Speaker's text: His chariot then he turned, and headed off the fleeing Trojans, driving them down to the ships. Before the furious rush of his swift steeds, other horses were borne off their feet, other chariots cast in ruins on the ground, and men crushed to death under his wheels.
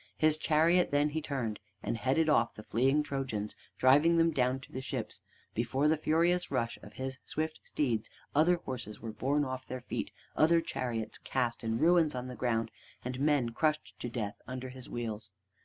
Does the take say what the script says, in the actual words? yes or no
yes